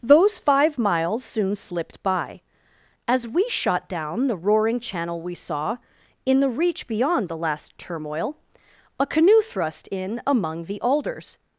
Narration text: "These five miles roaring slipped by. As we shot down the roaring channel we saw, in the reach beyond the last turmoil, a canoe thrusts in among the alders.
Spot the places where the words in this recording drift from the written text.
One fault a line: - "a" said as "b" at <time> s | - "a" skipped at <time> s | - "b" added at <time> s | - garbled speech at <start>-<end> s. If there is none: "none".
- "These" said as "Those" at 0.0 s
- "roaring" said as "soon" at 1.2 s
- "thrusts" said as "thrust" at 9.4 s